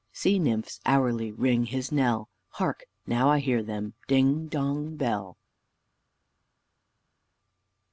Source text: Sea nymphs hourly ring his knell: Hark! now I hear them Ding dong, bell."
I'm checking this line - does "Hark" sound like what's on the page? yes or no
yes